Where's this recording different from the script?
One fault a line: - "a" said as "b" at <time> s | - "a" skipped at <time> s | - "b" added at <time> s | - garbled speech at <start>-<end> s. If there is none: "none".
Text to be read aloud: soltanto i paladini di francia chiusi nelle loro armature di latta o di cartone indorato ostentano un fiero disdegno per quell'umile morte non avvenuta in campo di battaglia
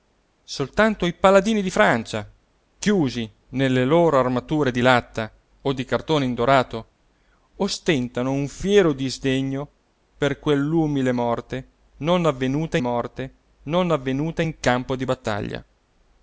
- "morte non avvenuta" added at 12.8 s